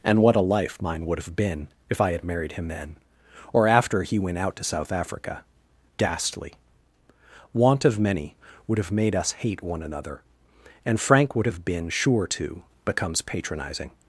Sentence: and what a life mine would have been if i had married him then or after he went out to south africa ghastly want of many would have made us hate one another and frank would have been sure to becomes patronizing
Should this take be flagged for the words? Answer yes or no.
no